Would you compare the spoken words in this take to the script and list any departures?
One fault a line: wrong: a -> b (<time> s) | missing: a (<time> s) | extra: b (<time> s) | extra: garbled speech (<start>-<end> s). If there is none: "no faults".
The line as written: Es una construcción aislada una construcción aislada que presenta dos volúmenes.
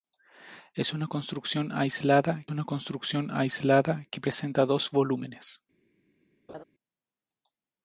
no faults